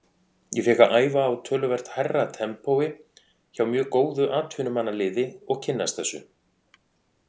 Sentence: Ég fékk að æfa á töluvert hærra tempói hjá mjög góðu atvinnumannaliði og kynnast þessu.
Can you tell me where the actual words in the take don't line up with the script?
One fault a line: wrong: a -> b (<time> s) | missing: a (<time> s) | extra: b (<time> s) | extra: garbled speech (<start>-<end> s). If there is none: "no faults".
no faults